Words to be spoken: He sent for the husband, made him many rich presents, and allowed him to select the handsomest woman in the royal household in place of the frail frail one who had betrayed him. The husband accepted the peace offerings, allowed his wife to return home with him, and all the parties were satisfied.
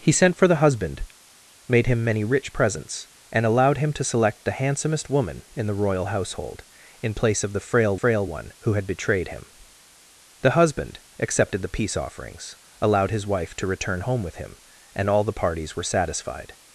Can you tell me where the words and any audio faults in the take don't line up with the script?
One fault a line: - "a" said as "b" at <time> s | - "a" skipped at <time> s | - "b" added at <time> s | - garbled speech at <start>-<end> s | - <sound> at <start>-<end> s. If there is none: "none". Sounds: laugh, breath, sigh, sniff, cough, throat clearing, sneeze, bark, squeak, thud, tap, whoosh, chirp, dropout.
none